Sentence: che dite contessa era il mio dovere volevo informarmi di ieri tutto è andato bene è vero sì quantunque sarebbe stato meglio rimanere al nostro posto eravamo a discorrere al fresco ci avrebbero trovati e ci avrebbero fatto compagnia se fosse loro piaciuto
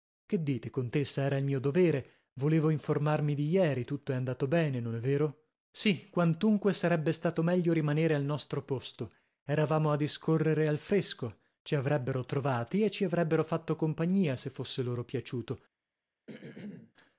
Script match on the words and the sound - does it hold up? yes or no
no